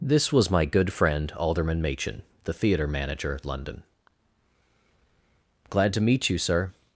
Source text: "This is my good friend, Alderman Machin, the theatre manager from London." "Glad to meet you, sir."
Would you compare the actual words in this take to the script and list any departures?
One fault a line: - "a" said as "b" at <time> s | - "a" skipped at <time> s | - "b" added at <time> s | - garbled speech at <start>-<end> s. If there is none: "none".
- "is" said as "was" at 0.3 s
- "from" skipped at 3.4 s